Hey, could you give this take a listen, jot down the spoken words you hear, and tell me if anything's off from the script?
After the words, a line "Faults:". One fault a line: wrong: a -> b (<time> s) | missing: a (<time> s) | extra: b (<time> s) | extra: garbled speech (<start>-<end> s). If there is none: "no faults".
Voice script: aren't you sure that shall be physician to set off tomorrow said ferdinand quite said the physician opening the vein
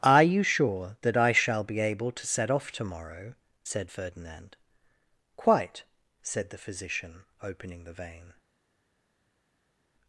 are you sure that i shall be able to set off tomorrow said ferdinand quite said the physician opening the vein
Faults:
wrong: aren't -> are (0.0 s)
extra: i (1.2 s)
wrong: physician -> able (1.8 s)